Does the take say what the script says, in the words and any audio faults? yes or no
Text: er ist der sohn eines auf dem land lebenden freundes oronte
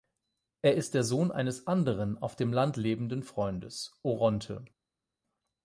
no